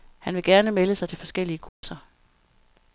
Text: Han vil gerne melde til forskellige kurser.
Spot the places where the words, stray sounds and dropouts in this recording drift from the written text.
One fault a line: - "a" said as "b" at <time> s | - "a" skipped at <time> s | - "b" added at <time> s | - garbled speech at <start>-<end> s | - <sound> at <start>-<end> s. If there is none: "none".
- "sig" added at 0.9 s
- dropout at 1.7-1.8 s